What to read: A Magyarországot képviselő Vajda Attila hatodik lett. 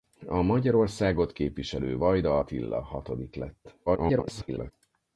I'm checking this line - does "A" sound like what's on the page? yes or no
yes